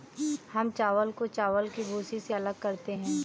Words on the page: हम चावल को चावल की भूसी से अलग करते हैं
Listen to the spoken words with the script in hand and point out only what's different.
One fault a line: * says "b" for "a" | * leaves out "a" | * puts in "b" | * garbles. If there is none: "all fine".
all fine